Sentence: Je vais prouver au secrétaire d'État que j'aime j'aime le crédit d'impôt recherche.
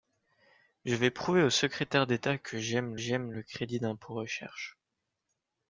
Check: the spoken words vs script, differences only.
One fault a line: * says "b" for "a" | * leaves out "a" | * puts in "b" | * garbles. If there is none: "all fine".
all fine